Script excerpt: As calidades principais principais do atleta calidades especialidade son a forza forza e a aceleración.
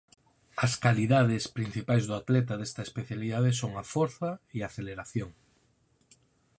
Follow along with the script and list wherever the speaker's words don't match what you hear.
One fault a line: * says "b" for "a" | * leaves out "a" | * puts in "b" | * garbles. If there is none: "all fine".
* leaves out "principais"
* says "desta" for "calidades"
* leaves out "forza"